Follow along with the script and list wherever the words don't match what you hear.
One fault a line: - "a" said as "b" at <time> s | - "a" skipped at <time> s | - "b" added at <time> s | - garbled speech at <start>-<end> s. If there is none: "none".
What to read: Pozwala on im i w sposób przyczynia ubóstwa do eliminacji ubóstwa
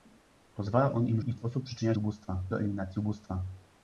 none